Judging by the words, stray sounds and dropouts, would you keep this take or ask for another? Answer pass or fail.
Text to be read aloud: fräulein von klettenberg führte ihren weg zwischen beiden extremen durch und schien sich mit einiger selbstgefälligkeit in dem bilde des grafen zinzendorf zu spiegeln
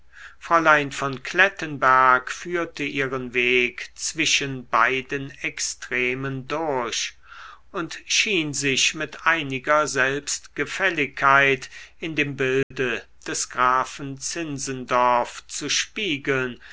fail